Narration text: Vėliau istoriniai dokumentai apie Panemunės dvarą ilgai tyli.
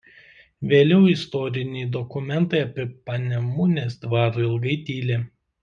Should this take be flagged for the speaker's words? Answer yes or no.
no